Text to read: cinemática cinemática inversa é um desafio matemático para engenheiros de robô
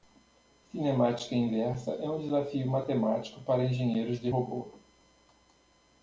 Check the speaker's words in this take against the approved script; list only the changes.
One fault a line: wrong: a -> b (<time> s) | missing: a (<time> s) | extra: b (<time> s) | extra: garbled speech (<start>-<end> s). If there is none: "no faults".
missing: cinemática (1.4 s)